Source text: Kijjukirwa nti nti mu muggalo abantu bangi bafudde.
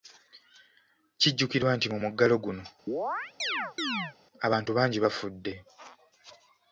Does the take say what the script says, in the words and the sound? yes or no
no